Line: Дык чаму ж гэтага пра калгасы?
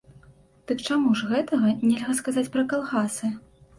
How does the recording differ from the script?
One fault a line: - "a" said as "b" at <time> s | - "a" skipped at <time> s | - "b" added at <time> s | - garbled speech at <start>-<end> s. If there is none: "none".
- "нельга сказаць" added at 1.9 s